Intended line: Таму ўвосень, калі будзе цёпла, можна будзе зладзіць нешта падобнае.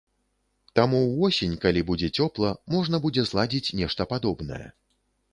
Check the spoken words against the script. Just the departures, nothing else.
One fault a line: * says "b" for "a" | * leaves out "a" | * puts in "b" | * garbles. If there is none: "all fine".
all fine